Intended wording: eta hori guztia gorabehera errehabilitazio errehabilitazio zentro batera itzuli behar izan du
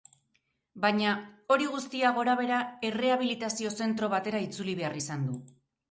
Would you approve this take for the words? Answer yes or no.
no